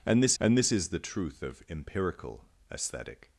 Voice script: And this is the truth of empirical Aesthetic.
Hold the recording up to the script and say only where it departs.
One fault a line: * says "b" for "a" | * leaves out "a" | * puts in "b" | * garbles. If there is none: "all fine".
* puts in "and this"